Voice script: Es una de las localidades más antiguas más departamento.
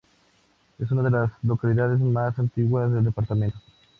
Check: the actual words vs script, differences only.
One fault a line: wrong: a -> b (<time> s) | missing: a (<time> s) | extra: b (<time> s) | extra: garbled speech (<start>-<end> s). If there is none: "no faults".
wrong: más -> del (2.9 s)